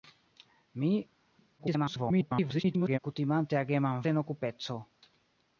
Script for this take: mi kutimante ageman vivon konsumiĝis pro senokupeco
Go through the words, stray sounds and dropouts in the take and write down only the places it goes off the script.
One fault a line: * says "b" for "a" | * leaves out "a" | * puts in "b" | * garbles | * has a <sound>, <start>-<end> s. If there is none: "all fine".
* garbles
* leaves out "vivon konsumiĝis pro"